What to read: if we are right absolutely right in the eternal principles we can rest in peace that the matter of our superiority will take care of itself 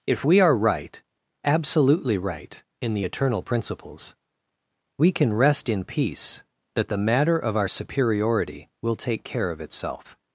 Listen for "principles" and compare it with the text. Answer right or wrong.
right